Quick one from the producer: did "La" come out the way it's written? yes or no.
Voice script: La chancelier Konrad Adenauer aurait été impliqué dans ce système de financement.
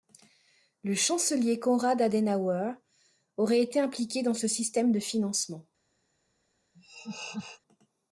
no